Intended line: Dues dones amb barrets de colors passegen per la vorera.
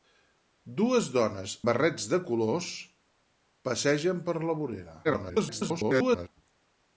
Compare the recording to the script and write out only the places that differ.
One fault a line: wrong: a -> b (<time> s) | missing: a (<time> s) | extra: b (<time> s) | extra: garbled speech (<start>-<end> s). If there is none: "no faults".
missing: amb (1.5 s)
extra: garbled speech (5.0-6.3 s)